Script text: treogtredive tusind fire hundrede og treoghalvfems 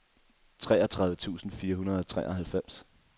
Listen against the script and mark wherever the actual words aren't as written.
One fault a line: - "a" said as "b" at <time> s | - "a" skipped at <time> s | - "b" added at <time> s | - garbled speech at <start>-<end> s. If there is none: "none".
none